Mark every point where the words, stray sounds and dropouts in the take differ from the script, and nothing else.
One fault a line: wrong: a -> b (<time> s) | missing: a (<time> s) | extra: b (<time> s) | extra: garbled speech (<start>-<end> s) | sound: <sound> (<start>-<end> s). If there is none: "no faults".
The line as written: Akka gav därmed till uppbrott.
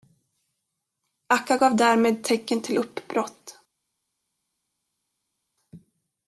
extra: tecken (2.2 s)